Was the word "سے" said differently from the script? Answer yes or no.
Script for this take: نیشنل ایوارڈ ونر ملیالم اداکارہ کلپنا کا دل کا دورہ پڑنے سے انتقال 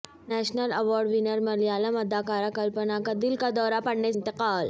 yes